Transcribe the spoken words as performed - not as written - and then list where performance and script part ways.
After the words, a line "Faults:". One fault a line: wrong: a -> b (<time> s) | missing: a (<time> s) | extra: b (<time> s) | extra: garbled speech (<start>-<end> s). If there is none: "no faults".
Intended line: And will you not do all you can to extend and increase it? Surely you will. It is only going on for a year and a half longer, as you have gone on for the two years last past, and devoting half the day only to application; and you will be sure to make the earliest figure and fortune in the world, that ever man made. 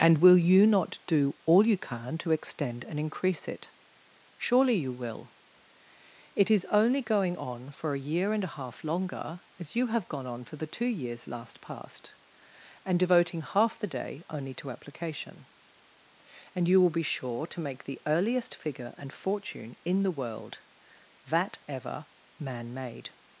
And will you not do all you can to extend and increase it? Surely you will. It is only going on for a year and a half longer, as you have gone on for the two years last past, and devoting half the day only to application; and you will be sure to make the earliest figure and fortune in the world, that ever man made.
Faults:
no faults